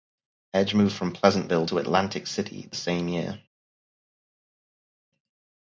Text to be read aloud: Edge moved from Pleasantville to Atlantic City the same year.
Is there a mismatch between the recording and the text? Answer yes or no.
no